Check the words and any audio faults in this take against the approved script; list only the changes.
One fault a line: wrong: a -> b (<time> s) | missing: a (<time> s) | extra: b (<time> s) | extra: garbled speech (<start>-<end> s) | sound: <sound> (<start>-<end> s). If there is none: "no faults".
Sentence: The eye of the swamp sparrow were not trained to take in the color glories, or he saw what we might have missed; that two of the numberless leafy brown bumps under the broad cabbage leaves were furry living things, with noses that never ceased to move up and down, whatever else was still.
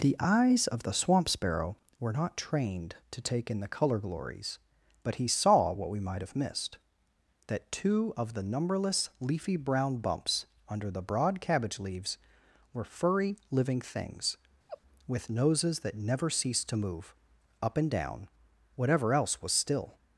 wrong: eye -> eyes (0.2 s)
wrong: or -> but (5.0 s)
sound: laugh (14.7-14.8 s)